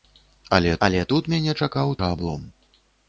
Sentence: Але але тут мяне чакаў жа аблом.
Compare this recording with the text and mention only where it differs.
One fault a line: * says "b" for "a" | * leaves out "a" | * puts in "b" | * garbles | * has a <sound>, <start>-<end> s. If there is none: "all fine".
all fine